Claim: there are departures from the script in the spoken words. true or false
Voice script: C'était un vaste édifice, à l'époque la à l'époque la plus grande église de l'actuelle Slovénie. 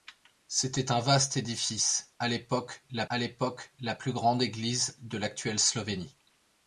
false